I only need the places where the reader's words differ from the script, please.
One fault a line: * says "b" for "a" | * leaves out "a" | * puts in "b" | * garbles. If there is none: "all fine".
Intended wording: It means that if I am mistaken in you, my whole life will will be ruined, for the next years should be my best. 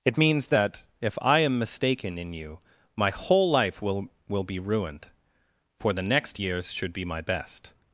all fine